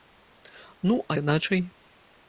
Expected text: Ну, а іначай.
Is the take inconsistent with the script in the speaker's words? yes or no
no